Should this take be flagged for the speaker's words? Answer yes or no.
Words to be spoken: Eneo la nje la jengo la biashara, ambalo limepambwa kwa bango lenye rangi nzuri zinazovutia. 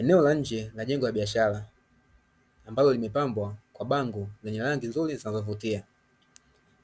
no